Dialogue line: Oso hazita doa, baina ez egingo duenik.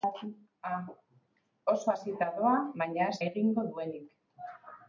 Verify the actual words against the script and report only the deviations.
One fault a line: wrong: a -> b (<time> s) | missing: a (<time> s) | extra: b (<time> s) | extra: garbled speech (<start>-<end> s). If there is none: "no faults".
no faults